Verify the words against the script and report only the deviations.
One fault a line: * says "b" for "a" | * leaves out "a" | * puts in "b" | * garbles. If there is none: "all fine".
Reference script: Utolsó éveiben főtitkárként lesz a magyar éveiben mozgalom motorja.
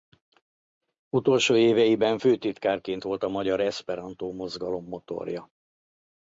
* says "volt" for "lesz"
* says "eszperantó" for "éveiben"